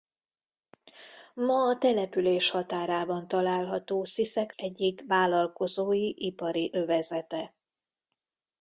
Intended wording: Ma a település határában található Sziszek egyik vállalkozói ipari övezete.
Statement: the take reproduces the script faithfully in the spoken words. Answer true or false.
true